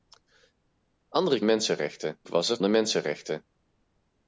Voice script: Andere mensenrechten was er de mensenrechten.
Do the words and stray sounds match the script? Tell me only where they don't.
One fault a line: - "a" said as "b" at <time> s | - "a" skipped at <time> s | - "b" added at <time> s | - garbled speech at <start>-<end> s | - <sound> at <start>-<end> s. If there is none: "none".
none